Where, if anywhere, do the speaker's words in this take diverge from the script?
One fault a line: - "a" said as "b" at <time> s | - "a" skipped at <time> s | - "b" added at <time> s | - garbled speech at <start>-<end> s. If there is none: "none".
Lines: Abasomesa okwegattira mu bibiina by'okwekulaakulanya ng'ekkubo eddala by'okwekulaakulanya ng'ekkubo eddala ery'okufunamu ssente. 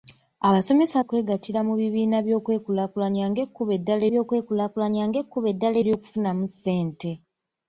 none